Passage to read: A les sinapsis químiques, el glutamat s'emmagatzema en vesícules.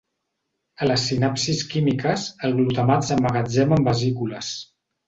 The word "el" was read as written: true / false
true